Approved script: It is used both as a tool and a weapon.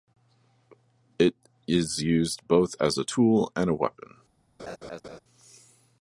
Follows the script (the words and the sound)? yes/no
no